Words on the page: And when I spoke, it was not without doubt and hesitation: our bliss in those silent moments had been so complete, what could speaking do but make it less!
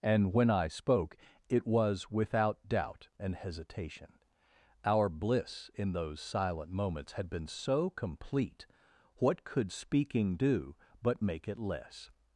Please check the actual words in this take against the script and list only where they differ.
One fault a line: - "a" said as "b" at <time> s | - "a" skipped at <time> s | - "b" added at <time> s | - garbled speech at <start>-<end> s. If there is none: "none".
- "not" skipped at 2.1 s